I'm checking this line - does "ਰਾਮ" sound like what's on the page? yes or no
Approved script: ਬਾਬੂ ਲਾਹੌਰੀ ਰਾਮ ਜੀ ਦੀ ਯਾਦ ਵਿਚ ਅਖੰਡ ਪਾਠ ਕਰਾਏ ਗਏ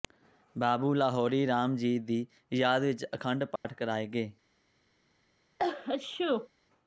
yes